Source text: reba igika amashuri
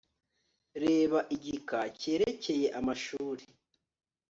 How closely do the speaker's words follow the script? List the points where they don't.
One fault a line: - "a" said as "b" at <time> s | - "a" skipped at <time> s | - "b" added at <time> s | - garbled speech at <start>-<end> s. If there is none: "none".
- "cyerekeye" added at 2.0 s